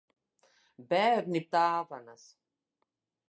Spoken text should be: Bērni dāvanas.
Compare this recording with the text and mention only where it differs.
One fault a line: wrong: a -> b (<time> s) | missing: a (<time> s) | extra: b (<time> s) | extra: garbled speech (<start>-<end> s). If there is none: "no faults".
no faults